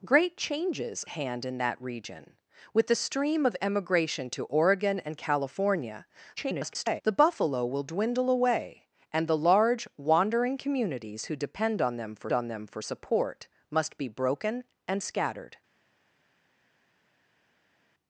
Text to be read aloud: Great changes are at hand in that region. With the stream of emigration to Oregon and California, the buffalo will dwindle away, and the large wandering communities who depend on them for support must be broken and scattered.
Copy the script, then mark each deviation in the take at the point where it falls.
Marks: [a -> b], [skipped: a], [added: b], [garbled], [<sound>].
Great changes [skipped: are at] hand in that region. With the stream of emigration to Oregon and California, [garbled] the buffalo will dwindle away, and the large wandering communities who depend on them for [added: on them for] support must be broken and scattered.